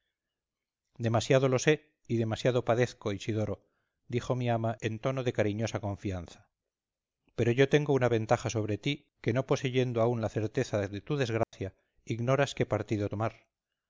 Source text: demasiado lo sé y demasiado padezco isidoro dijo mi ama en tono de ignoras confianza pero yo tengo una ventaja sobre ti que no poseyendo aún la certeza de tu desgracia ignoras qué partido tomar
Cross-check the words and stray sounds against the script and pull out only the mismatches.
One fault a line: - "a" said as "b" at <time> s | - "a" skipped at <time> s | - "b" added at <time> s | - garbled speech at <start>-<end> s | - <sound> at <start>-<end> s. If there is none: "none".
- "ignoras" said as "cariñosa" at 5.3 s
- dropout at 11.4-11.5 s